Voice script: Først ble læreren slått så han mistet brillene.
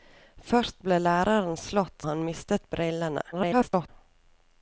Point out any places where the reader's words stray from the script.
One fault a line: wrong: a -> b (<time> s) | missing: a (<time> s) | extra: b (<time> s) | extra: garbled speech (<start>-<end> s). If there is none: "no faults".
missing: så (2.1 s)
extra: garbled speech (3.3-3.9 s)